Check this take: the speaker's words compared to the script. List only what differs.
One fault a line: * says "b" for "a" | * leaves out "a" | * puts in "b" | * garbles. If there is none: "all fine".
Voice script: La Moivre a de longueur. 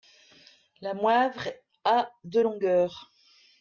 all fine